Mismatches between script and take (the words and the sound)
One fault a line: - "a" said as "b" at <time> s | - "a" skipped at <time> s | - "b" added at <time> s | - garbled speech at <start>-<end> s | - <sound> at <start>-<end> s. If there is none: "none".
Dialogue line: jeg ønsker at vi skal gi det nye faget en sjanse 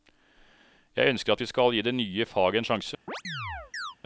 - chirp at 3.1-4.0 s